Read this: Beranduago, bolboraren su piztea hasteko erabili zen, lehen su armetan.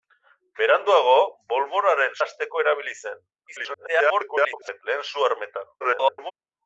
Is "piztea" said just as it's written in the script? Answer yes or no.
no